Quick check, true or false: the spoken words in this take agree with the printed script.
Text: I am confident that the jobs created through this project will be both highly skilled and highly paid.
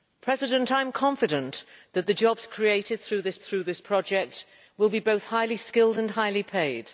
false